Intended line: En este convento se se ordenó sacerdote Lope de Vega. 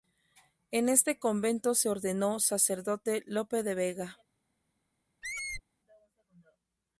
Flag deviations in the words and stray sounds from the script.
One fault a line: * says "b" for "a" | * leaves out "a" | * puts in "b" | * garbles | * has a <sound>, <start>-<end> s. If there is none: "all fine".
* leaves out "se"
* has a squeak, 5.2-5.6 s